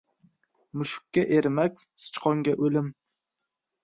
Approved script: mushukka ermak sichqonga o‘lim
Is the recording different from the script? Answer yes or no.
no